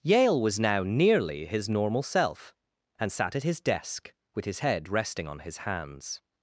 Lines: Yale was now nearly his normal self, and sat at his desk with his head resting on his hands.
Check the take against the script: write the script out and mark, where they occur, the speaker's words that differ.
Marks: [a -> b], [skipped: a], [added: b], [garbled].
Yale was now nearly his normal self, and sat at his desk with his head resting on his hands.